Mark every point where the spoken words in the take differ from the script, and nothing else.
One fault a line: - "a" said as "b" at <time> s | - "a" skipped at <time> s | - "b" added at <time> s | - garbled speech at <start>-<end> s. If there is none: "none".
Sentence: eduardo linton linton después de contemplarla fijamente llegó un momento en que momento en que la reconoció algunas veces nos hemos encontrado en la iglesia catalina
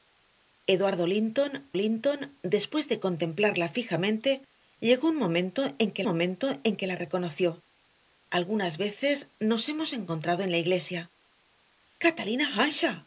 none